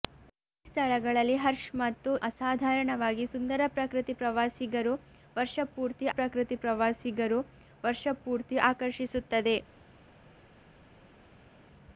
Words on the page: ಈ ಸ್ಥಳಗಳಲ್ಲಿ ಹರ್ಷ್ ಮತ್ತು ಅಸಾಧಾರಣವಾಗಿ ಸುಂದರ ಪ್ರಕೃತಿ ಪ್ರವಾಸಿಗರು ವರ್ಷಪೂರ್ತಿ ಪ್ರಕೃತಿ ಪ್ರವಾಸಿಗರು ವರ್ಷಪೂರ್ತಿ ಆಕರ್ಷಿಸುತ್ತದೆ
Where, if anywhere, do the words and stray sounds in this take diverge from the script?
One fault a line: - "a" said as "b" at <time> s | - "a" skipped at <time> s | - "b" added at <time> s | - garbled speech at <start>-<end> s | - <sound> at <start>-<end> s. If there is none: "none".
none